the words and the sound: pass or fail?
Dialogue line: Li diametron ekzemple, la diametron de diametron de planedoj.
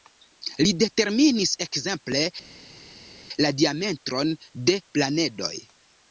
fail